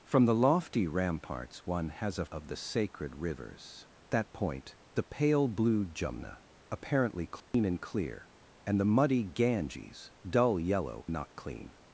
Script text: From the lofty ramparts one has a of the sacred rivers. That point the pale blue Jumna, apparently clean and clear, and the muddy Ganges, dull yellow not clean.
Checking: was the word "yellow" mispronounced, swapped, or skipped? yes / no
no